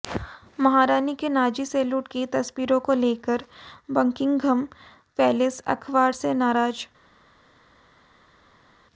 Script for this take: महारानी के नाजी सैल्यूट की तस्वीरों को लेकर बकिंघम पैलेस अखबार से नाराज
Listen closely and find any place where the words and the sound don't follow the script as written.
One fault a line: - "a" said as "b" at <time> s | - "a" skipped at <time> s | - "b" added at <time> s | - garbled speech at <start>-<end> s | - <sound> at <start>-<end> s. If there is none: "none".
none